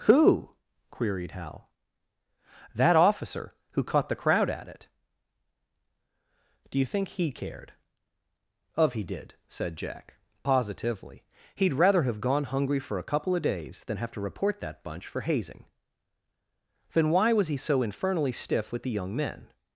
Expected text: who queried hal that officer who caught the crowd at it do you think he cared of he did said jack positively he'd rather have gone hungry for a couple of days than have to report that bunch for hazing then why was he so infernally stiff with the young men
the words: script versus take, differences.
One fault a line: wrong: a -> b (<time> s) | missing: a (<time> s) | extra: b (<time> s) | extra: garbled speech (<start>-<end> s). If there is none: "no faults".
no faults